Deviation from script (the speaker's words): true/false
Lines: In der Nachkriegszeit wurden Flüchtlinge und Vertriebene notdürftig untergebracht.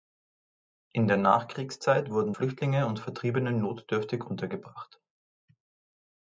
false